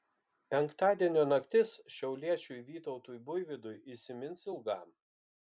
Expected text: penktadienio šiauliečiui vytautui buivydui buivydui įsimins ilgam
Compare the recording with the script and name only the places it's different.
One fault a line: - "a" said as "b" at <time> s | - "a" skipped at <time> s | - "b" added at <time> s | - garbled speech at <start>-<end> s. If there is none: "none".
- "naktis" added at 1.3 s
- "buivydui" skipped at 3.8 s